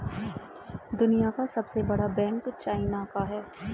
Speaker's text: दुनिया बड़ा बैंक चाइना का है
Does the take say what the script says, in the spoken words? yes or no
no